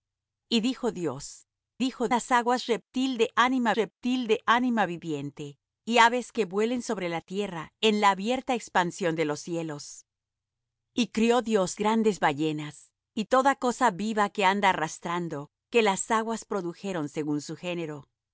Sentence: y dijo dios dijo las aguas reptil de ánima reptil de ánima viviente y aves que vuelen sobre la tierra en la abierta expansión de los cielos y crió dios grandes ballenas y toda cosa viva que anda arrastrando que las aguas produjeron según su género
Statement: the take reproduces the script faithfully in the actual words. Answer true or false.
true